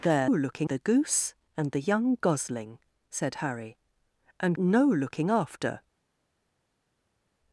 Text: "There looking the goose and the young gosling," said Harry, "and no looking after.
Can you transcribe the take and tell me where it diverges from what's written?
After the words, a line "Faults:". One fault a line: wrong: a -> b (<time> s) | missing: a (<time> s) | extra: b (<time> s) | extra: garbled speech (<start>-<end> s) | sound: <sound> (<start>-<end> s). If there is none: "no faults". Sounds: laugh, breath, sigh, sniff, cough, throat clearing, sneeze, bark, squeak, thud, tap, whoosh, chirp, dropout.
"There looking the goose and the young gosling," said Harry, "and no looking after.
Faults:
no faults